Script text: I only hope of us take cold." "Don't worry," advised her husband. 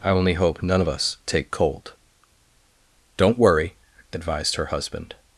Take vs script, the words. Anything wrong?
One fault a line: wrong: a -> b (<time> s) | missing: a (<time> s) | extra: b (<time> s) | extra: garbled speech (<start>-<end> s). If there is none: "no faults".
extra: none (0.6 s)